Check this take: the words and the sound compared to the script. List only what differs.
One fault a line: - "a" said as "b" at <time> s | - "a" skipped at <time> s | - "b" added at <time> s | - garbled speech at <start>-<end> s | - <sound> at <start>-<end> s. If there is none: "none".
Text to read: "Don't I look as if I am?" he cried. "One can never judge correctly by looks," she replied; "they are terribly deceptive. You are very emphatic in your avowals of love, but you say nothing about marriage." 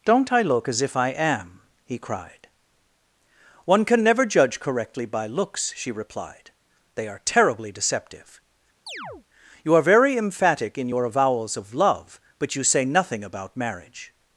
- chirp at 8.9-9.3 s